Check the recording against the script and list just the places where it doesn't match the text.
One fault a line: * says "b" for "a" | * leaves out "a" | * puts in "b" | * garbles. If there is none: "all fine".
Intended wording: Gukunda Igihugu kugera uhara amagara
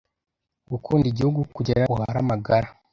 all fine